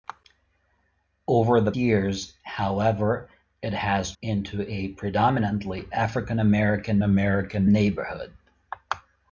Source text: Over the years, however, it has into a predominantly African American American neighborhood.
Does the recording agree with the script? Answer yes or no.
yes